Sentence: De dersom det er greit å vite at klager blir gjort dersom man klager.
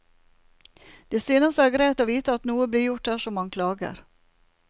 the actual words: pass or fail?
fail